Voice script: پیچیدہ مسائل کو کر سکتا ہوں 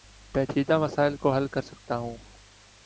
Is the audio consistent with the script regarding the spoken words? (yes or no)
no